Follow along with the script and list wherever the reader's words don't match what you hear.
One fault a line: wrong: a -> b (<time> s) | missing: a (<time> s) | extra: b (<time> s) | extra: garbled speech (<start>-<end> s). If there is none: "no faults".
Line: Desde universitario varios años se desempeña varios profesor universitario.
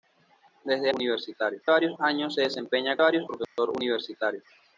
no faults